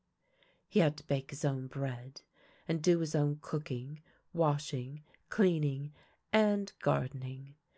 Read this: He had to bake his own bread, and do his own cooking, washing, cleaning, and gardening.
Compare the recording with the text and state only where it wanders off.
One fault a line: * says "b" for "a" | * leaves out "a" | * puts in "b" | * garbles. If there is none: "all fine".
all fine